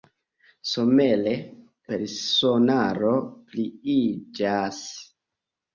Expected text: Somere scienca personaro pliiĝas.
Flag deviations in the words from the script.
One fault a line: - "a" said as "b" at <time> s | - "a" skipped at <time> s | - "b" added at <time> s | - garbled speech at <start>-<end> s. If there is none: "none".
- "scienca" skipped at 1.3 s